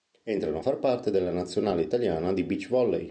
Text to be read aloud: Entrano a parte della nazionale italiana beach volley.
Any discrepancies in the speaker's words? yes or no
yes